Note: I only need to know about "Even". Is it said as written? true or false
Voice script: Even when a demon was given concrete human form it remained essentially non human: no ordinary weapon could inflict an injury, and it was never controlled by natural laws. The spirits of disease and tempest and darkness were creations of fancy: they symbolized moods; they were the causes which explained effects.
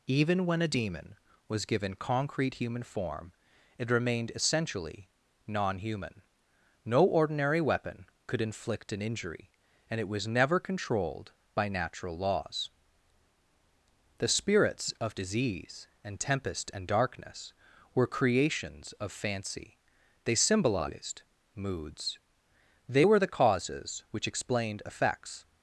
true